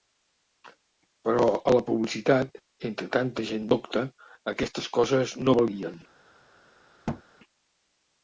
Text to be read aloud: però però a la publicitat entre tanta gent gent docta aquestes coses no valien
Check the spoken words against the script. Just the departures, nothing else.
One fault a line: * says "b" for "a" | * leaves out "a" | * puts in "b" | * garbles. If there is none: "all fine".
* leaves out "però"
* leaves out "gent"